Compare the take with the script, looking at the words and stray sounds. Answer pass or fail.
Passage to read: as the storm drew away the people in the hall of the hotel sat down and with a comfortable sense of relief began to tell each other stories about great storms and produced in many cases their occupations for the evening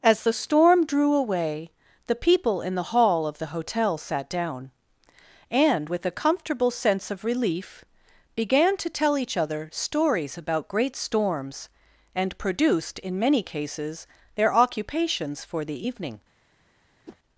fail